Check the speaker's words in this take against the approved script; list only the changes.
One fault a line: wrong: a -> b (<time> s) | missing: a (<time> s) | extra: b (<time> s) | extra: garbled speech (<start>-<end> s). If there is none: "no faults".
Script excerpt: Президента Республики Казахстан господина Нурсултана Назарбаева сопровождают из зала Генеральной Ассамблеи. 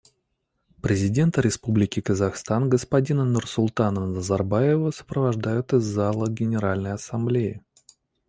no faults